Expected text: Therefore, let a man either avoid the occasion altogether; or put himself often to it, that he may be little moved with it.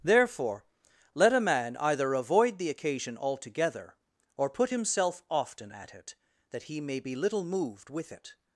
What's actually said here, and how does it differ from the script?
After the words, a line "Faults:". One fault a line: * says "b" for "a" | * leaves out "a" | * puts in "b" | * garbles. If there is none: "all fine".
Therefore, let a man either avoid the occasion altogether; or put himself often at it, that he may be little moved with it.
Faults:
* says "at" for "to"